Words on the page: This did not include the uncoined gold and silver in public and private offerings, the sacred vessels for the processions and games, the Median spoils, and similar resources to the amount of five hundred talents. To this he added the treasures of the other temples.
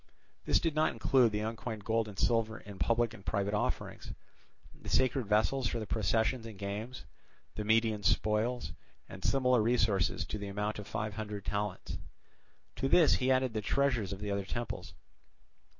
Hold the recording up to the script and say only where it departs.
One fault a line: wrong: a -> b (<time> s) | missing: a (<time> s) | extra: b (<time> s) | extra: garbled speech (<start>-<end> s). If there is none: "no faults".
no faults